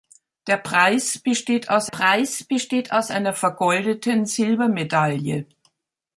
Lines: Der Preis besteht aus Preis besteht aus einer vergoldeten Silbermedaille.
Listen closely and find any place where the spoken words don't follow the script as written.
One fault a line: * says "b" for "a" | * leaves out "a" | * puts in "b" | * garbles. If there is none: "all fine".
all fine